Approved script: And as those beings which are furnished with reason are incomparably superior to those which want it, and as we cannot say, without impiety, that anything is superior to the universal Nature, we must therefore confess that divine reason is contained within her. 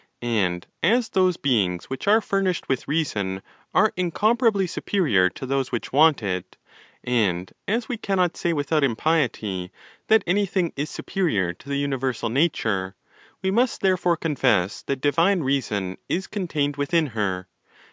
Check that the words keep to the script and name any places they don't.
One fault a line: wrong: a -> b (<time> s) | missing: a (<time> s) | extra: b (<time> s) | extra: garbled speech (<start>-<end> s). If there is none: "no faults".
no faults